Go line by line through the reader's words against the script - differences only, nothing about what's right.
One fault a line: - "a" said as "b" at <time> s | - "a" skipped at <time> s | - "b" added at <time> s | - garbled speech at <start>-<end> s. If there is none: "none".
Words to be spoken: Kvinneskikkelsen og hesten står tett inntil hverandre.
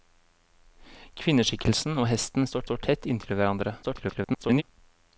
- "står" added at 2.6 s
- garbled speech at 3.8-4.6 s